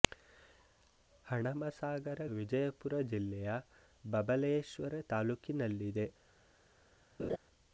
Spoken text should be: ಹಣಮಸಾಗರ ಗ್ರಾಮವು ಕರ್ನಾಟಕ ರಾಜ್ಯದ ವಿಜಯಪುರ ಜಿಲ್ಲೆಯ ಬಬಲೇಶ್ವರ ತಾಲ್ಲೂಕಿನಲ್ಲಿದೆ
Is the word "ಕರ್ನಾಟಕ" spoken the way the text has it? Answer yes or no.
no